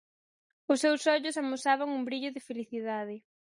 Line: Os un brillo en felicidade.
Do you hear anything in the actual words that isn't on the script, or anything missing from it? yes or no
yes